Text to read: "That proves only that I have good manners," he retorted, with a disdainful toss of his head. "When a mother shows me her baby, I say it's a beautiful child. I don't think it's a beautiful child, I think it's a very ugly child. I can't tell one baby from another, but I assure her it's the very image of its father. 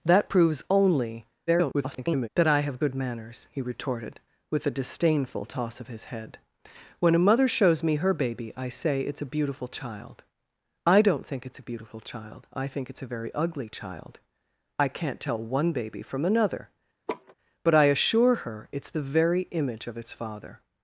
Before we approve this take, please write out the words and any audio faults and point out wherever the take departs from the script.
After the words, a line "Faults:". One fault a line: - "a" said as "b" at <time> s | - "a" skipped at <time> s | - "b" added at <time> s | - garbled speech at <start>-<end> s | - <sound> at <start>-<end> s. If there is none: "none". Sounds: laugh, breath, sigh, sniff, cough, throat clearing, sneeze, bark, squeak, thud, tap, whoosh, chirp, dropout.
"That proves only [garbled] that I have good manners," he retorted, with a disdainful toss of his head. "When a mother shows me her baby, I say it's a beautiful child. I don't think it's a beautiful child, I think it's a very ugly child. I can't tell one baby from another, but I assure her it's the very image of its father.
Faults:
- garbled speech at 1.5-2.3 s
- laugh at 17.1-17.3 s